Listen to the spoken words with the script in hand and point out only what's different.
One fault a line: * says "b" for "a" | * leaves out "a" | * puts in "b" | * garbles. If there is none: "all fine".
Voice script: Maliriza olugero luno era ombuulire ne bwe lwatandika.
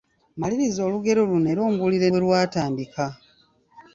* leaves out "ne"